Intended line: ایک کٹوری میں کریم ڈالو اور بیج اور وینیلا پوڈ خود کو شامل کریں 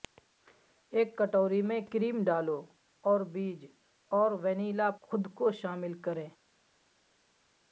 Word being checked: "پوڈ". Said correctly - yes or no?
no